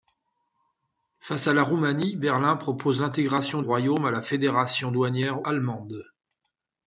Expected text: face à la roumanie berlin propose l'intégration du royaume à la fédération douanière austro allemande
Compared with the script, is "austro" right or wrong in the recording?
wrong